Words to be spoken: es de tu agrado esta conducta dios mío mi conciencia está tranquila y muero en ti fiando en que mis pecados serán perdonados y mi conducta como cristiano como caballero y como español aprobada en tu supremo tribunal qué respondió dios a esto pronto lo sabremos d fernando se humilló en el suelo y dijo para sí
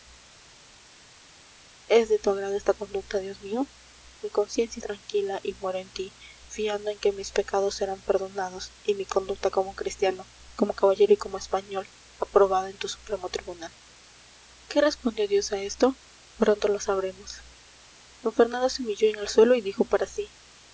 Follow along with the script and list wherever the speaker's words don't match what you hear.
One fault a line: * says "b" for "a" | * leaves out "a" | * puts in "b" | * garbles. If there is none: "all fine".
* leaves out "está"